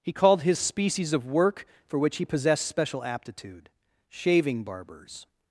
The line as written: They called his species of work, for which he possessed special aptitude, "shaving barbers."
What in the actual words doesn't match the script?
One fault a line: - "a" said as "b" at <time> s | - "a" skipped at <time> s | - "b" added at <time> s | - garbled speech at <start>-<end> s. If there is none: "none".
- "They" said as "He" at 0.0 s